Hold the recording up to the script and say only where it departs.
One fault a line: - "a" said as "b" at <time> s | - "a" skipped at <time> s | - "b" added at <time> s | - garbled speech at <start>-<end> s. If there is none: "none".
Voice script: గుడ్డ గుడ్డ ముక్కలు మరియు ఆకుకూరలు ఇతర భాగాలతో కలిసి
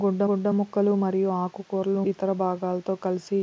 none